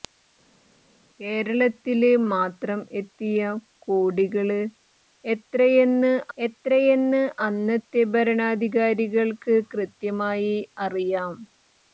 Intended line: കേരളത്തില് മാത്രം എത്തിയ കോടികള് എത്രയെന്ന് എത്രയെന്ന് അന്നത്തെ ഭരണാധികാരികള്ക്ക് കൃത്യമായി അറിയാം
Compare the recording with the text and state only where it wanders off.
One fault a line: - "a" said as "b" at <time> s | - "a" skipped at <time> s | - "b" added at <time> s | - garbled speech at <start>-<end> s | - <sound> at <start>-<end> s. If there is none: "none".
none